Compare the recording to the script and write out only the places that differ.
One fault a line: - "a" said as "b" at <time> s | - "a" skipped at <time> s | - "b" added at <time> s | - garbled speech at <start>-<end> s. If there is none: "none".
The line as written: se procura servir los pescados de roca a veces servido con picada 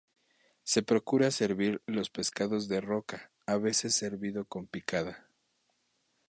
none